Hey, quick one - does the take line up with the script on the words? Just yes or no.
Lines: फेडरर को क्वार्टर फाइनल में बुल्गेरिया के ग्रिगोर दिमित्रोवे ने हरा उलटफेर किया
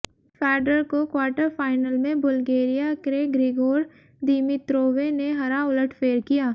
yes